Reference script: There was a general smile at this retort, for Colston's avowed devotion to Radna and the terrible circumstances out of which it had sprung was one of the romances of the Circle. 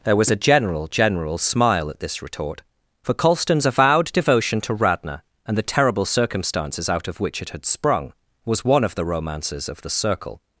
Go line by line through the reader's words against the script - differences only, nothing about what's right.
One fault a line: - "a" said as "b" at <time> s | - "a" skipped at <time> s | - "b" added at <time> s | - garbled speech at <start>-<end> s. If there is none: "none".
- "general" added at 0.9 s